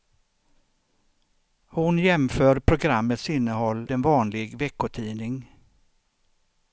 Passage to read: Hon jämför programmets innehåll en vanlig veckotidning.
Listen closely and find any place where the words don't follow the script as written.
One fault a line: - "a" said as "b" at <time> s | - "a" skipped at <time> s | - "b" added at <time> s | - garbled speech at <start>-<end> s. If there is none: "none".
none